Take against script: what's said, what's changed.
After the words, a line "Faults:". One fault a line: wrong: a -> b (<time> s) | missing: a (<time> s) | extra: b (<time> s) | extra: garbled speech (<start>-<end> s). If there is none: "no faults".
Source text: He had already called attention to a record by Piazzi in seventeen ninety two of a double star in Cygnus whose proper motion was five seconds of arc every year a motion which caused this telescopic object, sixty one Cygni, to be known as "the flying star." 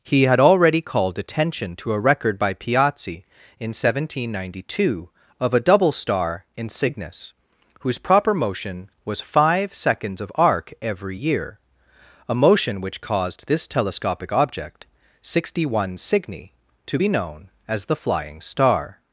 He had already called attention to a record by Piazzi in seventeen ninety two of a double star in Cygnus whose proper motion was five seconds of arc every year a motion which caused this telescopic object, sixty one Cygni, to be known as "the flying star."
Faults:
no faults